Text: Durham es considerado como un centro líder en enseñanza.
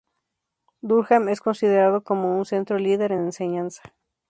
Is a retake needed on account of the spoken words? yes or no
no